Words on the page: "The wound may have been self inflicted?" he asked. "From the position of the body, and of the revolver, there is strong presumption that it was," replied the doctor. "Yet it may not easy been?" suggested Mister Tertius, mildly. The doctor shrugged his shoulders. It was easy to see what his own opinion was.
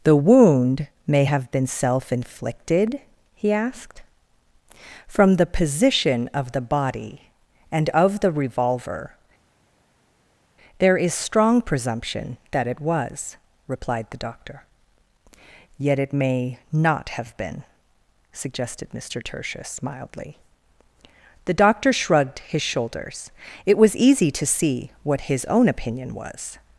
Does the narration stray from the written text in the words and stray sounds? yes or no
yes